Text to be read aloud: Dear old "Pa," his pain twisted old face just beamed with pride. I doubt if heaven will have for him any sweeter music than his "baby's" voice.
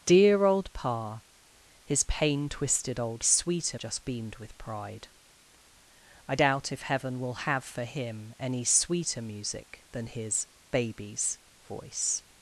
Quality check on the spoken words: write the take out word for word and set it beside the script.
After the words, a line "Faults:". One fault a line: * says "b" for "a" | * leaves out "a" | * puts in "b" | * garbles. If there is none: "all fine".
Dear old "Pa," his pain twisted old sweeter just beamed with pride. I doubt if heaven will have for him any sweeter music than his "baby's" voice.
Faults:
* says "sweeter" for "face"